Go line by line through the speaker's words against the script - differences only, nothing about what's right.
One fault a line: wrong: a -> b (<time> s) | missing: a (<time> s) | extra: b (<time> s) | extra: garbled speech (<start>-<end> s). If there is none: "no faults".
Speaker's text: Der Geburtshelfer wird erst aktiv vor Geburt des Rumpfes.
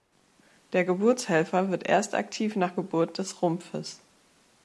wrong: vor -> nach (2.5 s)